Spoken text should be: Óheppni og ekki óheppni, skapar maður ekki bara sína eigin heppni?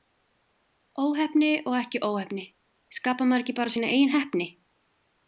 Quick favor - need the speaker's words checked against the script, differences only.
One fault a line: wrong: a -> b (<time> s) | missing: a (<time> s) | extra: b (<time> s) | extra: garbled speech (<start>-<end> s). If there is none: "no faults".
no faults